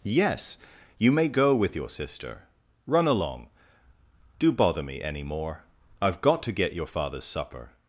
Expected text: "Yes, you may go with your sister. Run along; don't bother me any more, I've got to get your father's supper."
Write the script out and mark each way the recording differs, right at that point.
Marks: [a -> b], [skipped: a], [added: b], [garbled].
"Yes, you may go with your sister. Run along; [don't -> do] bother me any more, I've got to get your father's supper."